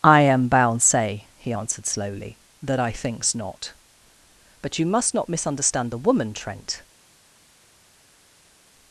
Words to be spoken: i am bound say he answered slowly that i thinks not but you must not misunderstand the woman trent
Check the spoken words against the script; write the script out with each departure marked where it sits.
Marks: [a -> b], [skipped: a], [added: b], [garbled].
i am bound say he answered slowly that i thinks not but you must not misunderstand the woman trent